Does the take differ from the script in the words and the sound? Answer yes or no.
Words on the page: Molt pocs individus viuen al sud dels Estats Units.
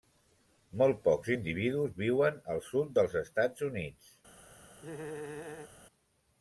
yes